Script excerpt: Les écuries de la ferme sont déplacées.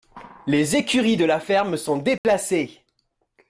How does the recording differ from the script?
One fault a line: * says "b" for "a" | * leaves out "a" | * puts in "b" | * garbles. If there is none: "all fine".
all fine